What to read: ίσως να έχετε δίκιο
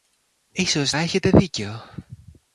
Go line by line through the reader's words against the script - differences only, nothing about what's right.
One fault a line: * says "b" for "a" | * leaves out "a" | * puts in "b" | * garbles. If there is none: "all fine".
* leaves out "να"